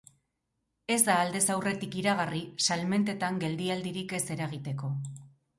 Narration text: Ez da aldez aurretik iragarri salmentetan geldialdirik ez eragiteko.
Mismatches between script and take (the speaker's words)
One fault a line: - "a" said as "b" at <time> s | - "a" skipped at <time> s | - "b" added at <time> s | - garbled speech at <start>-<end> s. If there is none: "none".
none